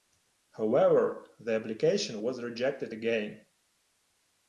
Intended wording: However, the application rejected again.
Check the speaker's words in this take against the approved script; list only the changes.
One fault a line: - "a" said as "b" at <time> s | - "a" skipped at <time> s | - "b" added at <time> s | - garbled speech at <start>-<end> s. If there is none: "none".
- "was" added at 2.2 s